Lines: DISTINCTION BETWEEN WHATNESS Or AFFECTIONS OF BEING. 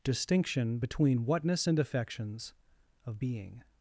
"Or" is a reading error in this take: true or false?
true